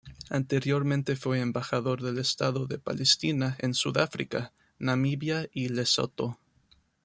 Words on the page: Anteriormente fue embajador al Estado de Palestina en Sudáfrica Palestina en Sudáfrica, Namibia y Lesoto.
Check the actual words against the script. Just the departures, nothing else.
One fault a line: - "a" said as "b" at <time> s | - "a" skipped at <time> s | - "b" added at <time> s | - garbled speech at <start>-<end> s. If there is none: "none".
- "al" said as "del" at 2.0 s
- "Palestina en Sudáfrica" skipped at 4.5 s